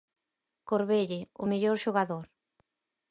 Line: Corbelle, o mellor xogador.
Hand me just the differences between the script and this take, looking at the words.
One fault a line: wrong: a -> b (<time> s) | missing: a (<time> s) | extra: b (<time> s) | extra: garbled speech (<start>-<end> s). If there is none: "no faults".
no faults